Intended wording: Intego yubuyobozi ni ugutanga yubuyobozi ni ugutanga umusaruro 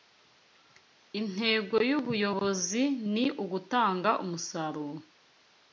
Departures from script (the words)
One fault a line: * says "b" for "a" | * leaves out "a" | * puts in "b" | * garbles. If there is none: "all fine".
* leaves out "yubuyobozi ni ugutanga"